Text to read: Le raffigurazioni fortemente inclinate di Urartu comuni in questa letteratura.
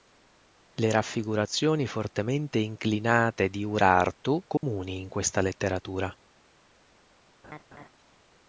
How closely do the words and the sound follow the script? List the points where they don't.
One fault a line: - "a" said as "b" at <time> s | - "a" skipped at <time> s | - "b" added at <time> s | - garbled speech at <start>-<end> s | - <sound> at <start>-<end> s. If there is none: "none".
- dropout at 4.6-4.6 s
- laugh at 7.4-7.9 s